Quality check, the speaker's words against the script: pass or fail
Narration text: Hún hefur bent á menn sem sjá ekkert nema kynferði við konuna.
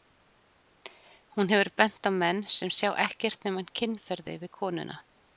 pass